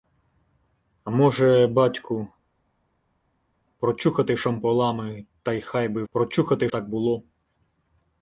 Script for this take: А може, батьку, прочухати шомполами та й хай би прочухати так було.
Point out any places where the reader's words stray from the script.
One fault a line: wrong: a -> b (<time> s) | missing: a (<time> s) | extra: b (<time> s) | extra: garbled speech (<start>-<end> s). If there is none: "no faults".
no faults